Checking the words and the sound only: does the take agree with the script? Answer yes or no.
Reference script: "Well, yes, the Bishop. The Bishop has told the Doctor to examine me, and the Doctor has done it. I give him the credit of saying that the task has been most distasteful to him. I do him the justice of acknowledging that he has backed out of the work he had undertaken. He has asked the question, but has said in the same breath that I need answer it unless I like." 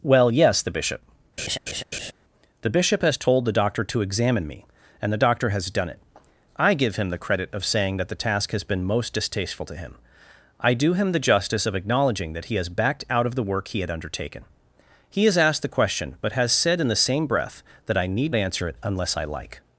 no